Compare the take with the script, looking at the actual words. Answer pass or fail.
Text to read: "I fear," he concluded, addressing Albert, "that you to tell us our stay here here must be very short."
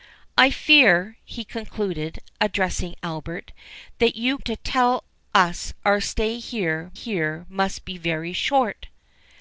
pass